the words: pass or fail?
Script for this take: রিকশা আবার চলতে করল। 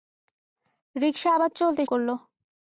pass